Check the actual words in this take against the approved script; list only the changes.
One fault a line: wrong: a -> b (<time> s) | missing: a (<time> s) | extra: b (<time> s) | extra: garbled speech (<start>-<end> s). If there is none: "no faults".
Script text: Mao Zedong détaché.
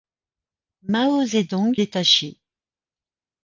no faults